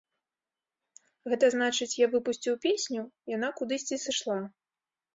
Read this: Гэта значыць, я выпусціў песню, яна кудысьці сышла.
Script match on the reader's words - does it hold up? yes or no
yes